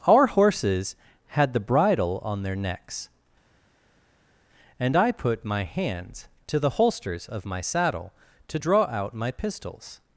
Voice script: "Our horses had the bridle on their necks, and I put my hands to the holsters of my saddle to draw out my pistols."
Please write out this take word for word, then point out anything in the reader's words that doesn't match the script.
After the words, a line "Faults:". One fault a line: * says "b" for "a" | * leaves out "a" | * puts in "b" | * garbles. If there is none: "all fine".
"Our horses had the bridle on their necks, and I put my hands to the holsters of my saddle to draw out my pistols."
Faults:
all fine